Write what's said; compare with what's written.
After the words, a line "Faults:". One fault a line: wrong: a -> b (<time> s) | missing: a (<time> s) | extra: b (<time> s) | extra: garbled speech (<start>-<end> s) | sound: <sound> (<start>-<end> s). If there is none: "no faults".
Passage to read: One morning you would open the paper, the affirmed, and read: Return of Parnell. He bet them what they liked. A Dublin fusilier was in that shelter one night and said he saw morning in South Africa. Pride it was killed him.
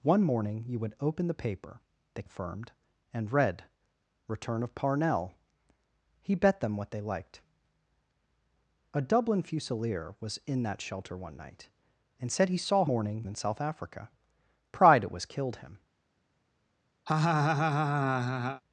One morning you would open the paper, the affirmed, and read: Return of Parnell. He bet them what they liked. A Dublin fusilier was in that shelter one night and said he saw morning in South Africa. Pride it was killed him.
Faults:
sound: laugh (17.1-18.6 s)